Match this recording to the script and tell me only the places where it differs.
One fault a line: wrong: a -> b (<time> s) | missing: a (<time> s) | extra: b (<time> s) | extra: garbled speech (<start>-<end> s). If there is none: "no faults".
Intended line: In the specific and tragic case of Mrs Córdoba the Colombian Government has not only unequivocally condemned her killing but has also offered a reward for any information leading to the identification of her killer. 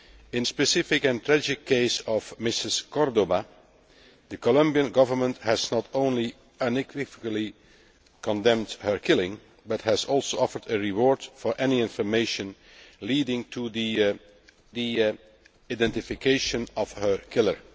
missing: the (0.5 s)
extra: the (14.7 s)